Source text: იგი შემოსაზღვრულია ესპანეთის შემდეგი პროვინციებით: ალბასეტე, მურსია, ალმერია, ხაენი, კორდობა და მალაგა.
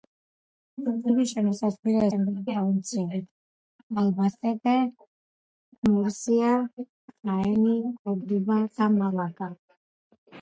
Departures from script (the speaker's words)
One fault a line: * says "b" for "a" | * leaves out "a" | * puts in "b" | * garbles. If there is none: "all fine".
* leaves out "ესპანეთის"
* leaves out "ალმერია"